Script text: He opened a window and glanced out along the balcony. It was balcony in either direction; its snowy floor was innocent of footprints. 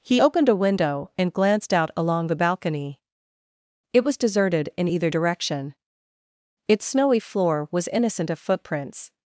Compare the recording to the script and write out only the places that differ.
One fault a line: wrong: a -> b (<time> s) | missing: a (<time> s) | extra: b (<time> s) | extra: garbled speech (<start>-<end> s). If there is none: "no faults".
wrong: balcony -> deserted (4.2 s)